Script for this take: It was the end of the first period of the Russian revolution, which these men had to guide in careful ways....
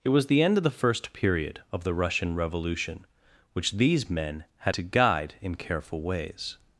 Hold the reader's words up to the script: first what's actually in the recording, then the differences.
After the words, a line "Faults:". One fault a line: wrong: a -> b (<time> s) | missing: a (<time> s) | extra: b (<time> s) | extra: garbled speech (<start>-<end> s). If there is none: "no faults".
It was the end of the first period of the Russian revolution, which these men had to guide in careful ways....
Faults:
no faults